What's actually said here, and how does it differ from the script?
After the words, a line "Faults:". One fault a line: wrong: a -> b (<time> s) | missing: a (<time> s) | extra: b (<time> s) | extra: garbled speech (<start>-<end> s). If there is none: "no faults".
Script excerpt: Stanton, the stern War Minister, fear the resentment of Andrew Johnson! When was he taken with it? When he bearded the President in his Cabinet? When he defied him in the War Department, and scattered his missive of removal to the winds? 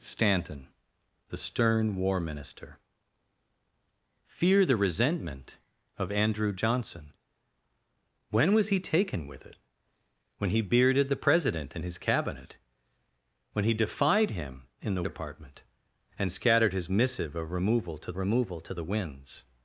Stanton, the stern War Minister, fear the resentment of Andrew Johnson! When was he taken with it? When he bearded the President in his Cabinet? When he defied him in the Department, and scattered his missive of removal to removal to the winds?
Faults:
missing: War (15.0 s)
extra: removal to (18.2 s)